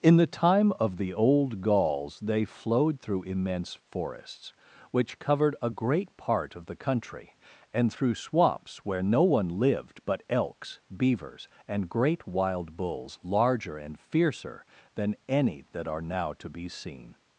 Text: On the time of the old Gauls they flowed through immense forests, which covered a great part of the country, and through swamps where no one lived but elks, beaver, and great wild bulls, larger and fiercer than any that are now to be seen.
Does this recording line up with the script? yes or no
no